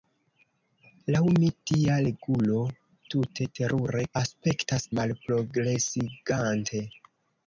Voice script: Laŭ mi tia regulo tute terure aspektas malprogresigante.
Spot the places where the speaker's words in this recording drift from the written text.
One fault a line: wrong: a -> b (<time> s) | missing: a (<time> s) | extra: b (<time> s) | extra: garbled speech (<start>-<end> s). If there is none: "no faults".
no faults